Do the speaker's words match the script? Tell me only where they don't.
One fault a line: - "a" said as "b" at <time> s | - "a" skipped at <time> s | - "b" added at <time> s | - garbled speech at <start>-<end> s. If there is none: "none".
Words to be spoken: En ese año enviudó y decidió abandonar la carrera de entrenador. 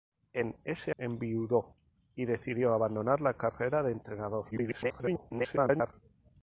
- "año" skipped at 0.9 s
- garbled speech at 4.5-5.9 s